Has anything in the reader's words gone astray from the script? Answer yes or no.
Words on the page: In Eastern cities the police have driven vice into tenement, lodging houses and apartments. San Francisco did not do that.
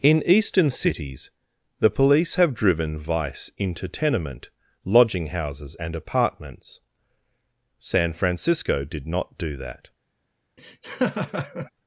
no